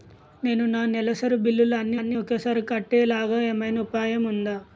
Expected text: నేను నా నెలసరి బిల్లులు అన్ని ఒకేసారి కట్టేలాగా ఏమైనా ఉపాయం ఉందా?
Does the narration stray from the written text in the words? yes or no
yes